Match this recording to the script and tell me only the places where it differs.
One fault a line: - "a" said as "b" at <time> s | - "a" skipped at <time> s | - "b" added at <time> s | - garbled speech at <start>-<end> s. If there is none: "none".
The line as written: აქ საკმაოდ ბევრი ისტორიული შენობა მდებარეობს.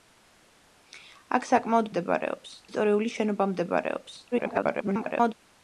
- "ბევრი" said as "მდებარეობს" at 1.9 s
- garbled speech at 4.3-5.3 s